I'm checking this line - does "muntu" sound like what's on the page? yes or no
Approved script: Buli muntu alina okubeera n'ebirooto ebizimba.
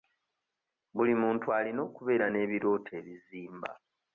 yes